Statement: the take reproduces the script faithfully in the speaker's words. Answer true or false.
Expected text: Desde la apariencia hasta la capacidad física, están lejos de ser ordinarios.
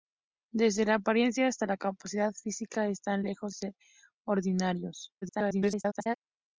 false